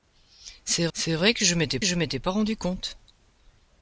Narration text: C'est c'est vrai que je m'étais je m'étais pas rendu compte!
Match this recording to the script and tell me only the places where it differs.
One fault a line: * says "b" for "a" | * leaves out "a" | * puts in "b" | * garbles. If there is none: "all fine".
all fine